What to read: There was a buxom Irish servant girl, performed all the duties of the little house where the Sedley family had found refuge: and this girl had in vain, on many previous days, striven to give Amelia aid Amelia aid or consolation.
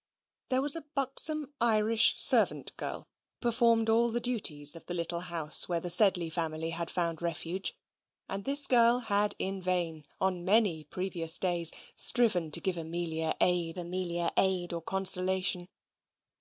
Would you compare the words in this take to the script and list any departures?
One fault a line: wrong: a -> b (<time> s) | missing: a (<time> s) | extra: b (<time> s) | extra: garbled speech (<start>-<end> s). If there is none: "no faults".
no faults